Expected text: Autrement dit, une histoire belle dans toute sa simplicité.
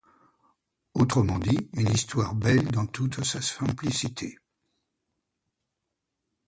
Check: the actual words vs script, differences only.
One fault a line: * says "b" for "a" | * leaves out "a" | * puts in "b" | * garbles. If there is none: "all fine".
all fine